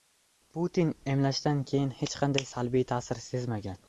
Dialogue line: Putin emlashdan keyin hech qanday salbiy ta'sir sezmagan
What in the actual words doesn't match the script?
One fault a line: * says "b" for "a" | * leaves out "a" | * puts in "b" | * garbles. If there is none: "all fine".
all fine